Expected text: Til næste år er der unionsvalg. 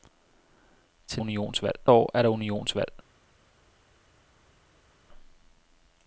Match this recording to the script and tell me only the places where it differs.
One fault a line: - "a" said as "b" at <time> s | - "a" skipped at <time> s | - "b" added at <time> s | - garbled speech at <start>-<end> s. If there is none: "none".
- "næste" said as "unionsvalg" at 1.2 s